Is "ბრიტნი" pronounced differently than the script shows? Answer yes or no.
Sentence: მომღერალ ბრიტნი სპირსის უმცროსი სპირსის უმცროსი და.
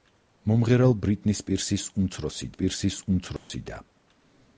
no